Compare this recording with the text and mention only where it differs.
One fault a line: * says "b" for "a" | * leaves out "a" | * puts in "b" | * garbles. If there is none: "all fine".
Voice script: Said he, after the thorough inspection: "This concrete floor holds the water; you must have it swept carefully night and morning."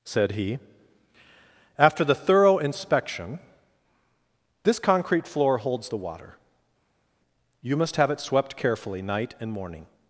all fine